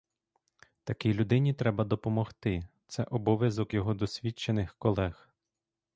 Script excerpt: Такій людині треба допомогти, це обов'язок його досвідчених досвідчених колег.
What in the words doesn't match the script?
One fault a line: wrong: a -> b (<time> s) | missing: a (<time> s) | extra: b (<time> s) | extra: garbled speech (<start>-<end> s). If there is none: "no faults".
missing: досвідчених (4.7 s)